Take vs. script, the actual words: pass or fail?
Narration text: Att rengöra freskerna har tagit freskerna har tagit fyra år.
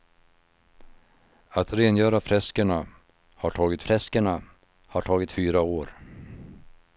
pass